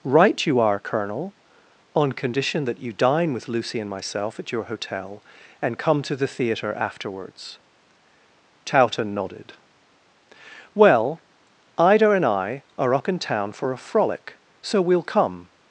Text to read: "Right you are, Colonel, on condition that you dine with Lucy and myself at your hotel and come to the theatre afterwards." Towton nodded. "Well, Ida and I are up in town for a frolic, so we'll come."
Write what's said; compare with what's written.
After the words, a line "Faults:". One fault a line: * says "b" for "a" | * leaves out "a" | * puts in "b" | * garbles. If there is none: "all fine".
"Right you are, Colonel, on condition that you dine with Lucy and myself at your hotel and come to the theatre afterwards." Towton nodded. "Well, Ida and I are up in town for a frolic, so we'll come."
Faults:
all fine